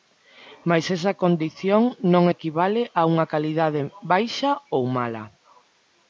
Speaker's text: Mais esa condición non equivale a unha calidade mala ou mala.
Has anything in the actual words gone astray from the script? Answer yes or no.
yes